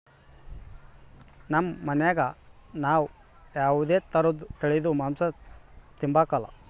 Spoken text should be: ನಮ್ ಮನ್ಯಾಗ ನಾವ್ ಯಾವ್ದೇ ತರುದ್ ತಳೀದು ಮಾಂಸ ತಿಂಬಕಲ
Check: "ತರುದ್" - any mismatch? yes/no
no